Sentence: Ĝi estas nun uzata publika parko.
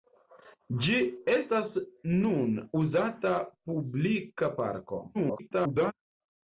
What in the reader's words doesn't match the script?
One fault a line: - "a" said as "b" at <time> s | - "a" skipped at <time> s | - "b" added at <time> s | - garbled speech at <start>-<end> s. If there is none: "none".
- garbled speech at 5.1-5.9 s